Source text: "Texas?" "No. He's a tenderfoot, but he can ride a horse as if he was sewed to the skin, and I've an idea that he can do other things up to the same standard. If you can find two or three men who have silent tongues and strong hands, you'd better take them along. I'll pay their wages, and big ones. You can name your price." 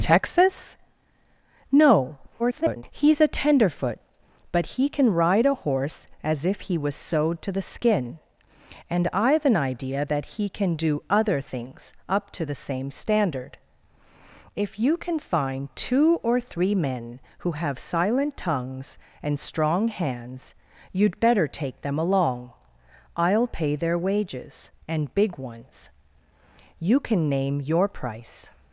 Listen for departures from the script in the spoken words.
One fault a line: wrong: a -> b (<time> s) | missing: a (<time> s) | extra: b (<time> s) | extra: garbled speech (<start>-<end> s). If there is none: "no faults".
extra: garbled speech (2.4-2.8 s)